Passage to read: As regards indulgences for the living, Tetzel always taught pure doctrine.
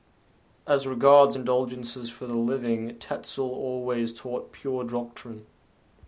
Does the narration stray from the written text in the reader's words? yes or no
no